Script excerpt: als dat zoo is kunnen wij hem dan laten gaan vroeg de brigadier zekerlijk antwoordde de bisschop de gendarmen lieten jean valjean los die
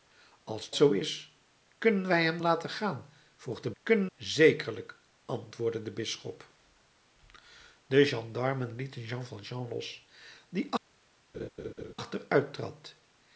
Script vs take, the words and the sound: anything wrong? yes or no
yes